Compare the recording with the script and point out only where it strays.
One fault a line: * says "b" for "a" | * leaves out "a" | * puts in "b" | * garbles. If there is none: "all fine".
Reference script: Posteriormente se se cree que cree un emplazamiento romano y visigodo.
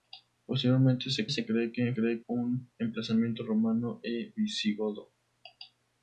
all fine